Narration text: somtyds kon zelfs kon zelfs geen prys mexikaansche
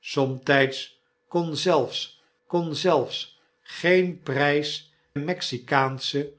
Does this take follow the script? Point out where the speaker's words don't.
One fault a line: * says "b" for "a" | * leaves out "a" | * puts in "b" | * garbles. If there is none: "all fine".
all fine